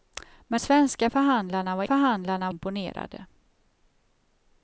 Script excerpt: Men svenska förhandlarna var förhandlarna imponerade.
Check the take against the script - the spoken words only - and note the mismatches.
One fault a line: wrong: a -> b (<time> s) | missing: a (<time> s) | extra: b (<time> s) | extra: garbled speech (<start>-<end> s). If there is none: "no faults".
no faults